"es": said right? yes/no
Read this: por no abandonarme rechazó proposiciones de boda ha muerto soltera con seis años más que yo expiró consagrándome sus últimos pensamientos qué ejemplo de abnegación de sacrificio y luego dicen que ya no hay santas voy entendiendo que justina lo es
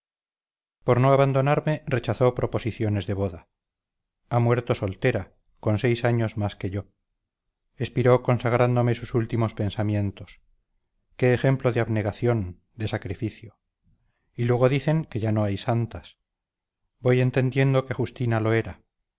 no